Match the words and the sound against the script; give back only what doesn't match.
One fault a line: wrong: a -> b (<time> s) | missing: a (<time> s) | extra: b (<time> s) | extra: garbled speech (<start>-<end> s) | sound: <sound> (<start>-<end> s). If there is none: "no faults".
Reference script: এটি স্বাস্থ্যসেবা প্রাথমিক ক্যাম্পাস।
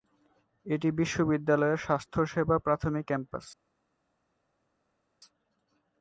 extra: বিশ্ববিদ্যালয়ের (0.9 s)